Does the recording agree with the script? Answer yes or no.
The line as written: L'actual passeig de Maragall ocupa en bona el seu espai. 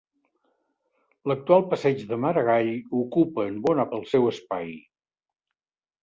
yes